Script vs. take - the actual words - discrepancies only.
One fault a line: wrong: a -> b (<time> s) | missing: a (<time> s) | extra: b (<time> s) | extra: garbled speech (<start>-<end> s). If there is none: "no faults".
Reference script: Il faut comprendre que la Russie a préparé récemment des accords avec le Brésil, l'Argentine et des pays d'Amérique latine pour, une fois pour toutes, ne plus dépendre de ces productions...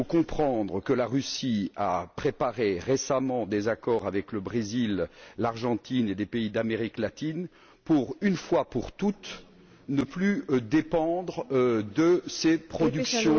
no faults